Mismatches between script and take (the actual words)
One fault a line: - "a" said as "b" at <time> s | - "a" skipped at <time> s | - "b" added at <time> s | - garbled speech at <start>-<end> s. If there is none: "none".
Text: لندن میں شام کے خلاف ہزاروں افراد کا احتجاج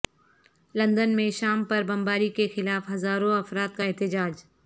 - "پر بمباری" added at 1.6 s